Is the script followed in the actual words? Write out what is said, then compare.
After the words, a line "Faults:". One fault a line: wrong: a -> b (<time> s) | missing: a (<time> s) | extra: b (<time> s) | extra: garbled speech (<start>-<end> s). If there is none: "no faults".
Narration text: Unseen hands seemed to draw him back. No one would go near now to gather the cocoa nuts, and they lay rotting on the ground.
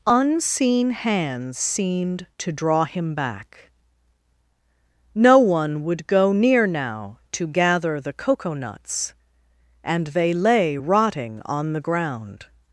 Unseen hands seemed to draw him back. No one would go near now to gather the cocoa nuts, and they lay rotting on the ground.
Faults:
no faults